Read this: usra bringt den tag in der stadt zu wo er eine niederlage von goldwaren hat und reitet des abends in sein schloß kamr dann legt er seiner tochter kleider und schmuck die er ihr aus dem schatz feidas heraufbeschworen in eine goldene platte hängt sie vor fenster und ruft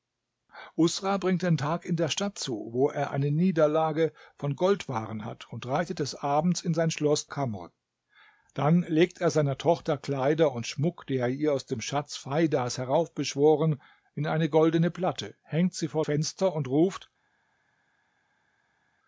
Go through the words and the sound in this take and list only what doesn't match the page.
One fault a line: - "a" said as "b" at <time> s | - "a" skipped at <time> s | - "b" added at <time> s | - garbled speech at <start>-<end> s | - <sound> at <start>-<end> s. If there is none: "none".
none